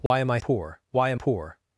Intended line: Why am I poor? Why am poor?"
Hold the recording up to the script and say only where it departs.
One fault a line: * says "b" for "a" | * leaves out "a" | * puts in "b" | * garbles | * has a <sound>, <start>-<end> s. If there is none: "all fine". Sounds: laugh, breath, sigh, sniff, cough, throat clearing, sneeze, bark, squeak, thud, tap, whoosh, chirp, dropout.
* has a dropout, 0.1-0.1 s